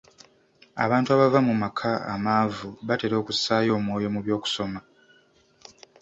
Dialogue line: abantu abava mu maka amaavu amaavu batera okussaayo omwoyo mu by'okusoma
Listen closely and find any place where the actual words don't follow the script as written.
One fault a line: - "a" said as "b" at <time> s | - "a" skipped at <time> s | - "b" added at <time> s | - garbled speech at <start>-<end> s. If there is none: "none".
- "amaavu" skipped at 2.7 s